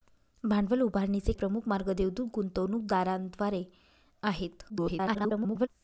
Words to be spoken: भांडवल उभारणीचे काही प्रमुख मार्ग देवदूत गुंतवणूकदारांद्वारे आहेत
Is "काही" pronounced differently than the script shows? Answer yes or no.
yes